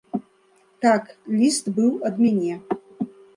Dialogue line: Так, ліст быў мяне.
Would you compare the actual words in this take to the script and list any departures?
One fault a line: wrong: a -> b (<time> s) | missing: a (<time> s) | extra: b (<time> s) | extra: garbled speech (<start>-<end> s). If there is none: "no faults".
extra: ад (2.1 s)